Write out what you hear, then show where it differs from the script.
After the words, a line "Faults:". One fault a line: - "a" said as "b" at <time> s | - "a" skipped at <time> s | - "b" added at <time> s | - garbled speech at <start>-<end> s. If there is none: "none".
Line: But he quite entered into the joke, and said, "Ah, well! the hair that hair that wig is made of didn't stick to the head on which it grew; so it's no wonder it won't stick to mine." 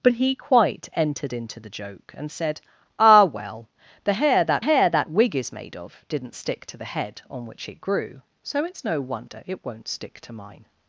But he quite entered into the joke, and said, "Ah, well! the hair that hair that wig is made of didn't stick to the head on which it grew; so it's no wonder it won't stick to mine."
Faults:
none